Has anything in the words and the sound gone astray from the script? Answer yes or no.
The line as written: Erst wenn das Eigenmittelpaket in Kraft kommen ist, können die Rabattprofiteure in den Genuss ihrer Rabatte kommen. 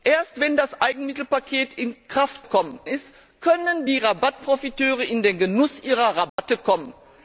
yes